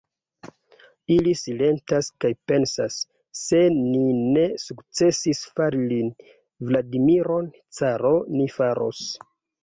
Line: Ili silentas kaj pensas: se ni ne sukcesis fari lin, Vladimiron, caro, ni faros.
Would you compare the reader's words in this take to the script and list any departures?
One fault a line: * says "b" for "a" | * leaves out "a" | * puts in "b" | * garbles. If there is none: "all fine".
all fine